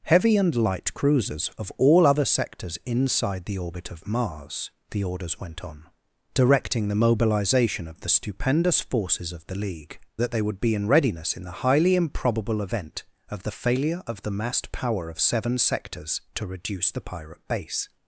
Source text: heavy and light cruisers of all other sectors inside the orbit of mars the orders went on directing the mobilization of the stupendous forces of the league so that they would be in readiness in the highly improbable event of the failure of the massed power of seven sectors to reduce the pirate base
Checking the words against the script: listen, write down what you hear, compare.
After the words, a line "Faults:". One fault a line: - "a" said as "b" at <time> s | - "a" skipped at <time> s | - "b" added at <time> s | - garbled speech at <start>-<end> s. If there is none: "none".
heavy and light cruisers of all other sectors inside the orbit of mars the orders went on directing the mobilization of the stupendous forces of the league that they would be in readiness in the highly improbable event of the failure of the massed power of seven sectors to reduce the pirate base
Faults:
- "so" skipped at 10.0 s